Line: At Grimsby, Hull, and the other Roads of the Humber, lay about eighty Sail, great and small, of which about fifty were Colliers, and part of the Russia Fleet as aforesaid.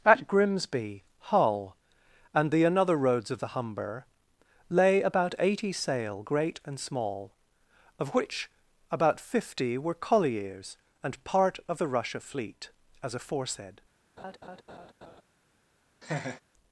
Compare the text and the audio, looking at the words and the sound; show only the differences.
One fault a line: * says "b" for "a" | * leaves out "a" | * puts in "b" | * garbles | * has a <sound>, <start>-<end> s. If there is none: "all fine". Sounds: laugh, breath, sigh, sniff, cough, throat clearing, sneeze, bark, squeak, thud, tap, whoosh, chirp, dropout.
* says "another" for "other"
* has a laugh, 14.2-15.2 s
* has a laugh, 16.0-16.4 s